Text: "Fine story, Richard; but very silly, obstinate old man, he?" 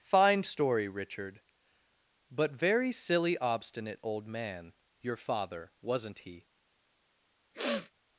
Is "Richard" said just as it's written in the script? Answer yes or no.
yes